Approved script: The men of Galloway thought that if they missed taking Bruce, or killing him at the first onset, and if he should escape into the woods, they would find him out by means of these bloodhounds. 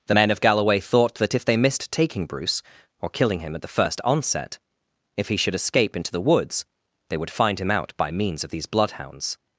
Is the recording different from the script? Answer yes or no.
yes